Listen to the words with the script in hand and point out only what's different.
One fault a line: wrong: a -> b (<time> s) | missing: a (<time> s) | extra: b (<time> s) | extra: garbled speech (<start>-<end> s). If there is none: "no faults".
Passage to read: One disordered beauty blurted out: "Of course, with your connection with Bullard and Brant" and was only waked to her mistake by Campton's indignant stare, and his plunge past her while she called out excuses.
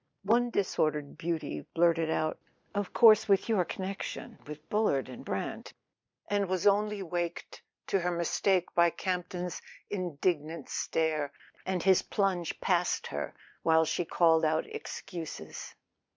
no faults